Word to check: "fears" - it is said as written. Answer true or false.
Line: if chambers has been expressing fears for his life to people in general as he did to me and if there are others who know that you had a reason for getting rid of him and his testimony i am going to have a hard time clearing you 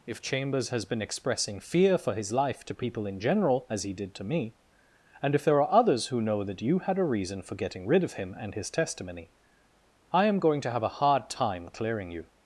false